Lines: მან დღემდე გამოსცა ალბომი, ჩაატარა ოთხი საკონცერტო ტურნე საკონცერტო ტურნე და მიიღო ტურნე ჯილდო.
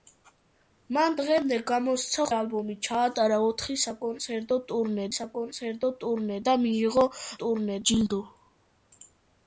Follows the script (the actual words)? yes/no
yes